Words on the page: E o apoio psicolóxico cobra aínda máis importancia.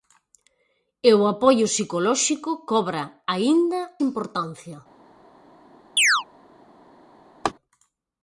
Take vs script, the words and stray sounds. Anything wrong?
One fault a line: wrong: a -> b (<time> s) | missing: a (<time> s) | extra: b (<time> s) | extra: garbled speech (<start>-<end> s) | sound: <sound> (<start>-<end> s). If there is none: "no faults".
missing: máis (3.8 s)
sound: chirp (6.0-6.2 s)
sound: laugh (7.4-7.5 s)